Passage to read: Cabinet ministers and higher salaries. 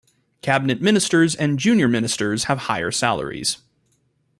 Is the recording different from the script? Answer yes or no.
yes